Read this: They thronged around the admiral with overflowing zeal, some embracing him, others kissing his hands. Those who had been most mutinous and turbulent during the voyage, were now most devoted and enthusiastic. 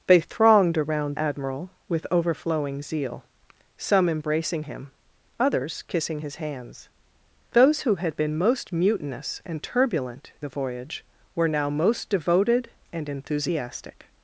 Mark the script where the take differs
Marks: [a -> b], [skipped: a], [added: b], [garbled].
They thronged around [skipped: the] admiral with overflowing zeal, some embracing him, others kissing his hands. Those who had been most mutinous and turbulent [skipped: during] the voyage, were now most devoted and enthusiastic.